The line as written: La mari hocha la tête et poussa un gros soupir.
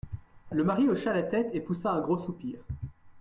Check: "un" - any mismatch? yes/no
no